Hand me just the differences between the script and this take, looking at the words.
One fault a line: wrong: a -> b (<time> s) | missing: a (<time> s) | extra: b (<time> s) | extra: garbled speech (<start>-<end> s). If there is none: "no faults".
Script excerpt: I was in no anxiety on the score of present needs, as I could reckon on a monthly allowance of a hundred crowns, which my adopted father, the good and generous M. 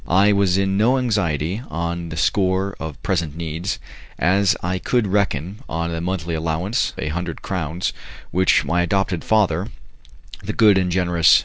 missing: of (6.9 s)